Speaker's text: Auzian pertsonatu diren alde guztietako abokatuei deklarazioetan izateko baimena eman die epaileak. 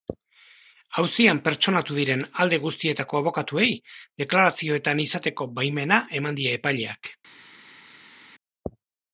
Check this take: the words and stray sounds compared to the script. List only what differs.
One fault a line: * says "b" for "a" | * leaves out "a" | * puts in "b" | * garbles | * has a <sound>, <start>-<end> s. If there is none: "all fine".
all fine